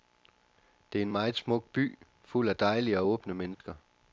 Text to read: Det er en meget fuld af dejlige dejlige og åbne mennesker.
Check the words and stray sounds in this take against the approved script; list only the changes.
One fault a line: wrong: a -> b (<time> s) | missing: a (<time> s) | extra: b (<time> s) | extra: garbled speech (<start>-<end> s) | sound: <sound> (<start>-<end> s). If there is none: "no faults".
extra: smuk by (1.3 s)
missing: dejlige (3.0 s)
sound: dropout (3.5-3.6 s)